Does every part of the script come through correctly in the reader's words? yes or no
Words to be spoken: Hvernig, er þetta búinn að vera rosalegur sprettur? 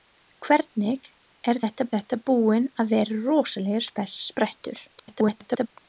no